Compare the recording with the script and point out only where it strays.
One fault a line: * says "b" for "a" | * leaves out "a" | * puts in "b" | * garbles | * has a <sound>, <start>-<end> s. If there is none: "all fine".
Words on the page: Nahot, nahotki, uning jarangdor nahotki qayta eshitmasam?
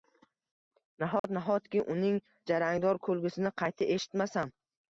* has a dropout, 1.2-1.2 s
* says "kulgisini" for "nahotki"